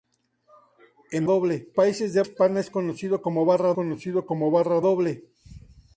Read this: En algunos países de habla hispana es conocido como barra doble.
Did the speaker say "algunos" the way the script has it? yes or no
no